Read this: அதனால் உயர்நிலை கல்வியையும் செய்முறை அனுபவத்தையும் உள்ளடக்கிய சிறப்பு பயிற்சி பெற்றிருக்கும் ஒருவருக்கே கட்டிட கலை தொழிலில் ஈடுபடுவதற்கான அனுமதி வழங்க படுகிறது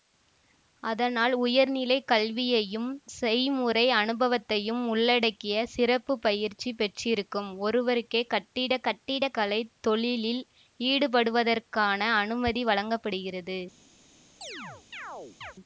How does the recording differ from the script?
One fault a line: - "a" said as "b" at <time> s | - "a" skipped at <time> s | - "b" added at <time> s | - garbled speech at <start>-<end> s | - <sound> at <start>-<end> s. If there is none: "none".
- "கட்டிட" added at 8.8 s
- chirp at 14.4-15.5 s